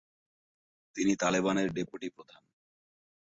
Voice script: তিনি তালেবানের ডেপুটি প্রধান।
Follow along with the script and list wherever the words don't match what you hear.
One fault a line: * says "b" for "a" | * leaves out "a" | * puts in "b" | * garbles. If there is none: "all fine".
all fine